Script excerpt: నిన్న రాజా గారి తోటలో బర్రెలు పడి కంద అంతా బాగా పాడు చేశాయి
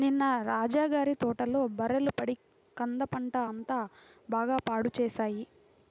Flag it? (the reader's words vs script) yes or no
yes